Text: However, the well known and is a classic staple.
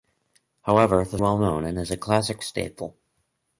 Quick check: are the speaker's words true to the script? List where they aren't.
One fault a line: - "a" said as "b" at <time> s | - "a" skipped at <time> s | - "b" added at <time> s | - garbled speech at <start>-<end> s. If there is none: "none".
none